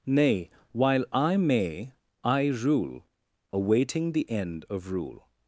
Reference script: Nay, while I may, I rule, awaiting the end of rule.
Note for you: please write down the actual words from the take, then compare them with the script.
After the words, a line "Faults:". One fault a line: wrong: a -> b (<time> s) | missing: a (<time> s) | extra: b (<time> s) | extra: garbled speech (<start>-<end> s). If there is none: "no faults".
Nay, while I may, I rule, awaiting the end of rule.
Faults:
no faults